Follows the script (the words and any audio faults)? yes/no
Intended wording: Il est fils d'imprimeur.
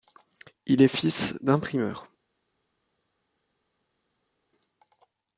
yes